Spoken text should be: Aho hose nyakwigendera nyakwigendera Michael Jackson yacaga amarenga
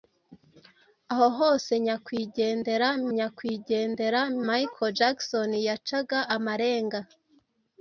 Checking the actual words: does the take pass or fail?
pass